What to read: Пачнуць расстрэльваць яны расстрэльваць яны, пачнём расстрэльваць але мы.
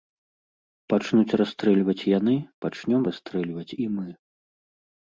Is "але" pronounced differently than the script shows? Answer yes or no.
yes